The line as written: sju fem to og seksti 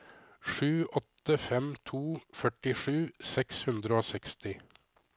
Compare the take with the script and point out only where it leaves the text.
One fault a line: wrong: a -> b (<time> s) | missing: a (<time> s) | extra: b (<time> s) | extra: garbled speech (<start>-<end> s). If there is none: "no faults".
extra: åtte (1.0 s)
extra: førtisju seks hundre (2.4 s)